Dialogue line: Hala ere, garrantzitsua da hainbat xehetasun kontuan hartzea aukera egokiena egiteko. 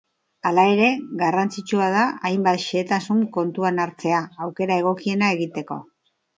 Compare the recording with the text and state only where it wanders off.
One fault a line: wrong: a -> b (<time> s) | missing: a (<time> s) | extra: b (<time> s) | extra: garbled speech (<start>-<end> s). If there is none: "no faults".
no faults